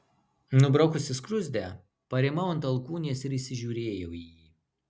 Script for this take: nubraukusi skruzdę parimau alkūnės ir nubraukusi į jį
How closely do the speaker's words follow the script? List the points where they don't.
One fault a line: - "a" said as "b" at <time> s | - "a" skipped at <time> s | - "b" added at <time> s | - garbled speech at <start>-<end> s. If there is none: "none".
- "ant" added at 2.5 s
- "nubraukusi" said as "įsižiūrėjau" at 3.4 s